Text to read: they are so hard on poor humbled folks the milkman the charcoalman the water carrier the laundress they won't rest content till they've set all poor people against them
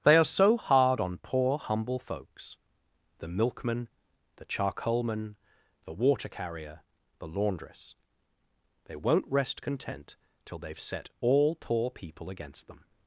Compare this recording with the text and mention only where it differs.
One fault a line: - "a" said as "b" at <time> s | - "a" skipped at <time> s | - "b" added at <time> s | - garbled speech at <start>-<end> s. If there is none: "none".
- "humbled" said as "humble" at 1.6 s